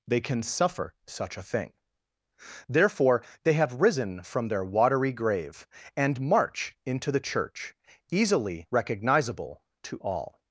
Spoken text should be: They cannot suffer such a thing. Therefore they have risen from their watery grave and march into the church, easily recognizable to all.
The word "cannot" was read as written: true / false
false